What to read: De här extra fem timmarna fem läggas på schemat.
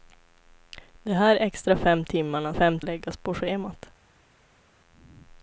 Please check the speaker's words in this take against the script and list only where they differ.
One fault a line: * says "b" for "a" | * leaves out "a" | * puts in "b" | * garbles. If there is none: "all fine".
all fine